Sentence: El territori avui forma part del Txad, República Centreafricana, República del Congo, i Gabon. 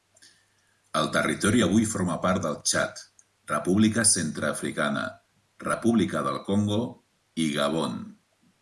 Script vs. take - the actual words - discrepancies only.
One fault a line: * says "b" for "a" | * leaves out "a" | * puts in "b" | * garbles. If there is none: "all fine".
all fine